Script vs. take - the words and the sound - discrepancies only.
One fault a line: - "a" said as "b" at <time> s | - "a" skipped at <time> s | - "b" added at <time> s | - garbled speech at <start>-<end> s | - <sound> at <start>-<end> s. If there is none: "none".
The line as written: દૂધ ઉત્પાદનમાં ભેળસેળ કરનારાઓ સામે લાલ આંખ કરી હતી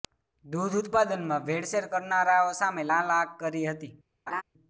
- laugh at 4.3-4.4 s